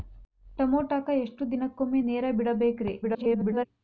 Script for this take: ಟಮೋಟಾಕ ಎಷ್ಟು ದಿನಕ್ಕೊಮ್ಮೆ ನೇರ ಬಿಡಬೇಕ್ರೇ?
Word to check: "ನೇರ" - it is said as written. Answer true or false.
true